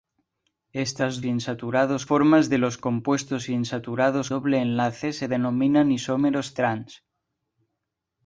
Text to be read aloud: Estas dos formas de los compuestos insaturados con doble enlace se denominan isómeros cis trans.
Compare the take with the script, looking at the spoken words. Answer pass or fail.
fail